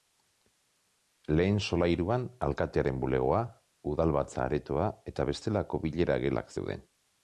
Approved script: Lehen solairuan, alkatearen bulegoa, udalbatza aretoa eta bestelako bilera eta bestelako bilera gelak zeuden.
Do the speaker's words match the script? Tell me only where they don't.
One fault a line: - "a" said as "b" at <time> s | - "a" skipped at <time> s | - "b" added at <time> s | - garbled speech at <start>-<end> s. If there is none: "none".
- "eta bestelako bilera" skipped at 6.2 s